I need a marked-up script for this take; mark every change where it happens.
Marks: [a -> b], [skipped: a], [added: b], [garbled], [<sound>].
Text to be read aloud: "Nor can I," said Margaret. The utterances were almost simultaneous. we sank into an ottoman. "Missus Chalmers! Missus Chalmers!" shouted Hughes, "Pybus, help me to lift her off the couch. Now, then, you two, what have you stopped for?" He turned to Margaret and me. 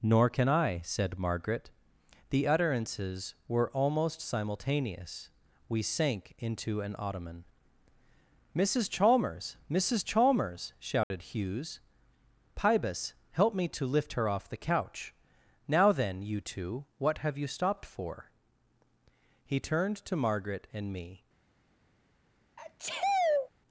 "Nor can I," said Margaret. The utterances were almost simultaneous. we sank into an ottoman. "Missus Chalmers! Missus Chalmers!" shouted [dropout] Hughes, "Pybus, help me to lift her off the couch. Now, then, you two, what have you stopped for?" He turned to Margaret and me. [sneeze]